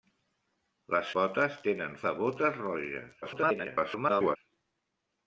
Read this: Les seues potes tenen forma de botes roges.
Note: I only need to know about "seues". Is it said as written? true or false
false